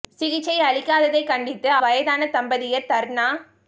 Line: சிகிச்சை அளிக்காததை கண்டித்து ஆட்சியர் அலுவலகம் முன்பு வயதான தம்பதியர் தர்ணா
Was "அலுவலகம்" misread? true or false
true